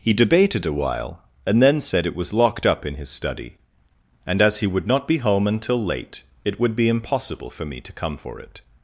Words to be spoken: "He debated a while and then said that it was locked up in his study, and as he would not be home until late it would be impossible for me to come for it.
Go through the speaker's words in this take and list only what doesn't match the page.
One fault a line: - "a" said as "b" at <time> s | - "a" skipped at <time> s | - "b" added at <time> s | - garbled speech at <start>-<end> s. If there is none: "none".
- "that" skipped at 2.1 s